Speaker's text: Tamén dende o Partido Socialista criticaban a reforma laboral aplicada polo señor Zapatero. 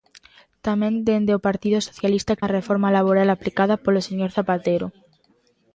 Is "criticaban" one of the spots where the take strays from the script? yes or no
yes